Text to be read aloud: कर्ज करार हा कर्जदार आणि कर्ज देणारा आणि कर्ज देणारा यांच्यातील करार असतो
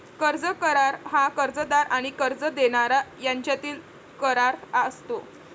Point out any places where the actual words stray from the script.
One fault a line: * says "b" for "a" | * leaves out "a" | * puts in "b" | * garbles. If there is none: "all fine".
* leaves out "आणि कर्ज देणारा"